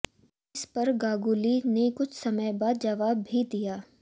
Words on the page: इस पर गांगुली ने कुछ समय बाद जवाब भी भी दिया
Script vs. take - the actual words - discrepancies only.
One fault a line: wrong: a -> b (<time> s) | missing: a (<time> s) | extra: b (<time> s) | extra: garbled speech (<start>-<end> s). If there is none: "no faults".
missing: भी (3.4 s)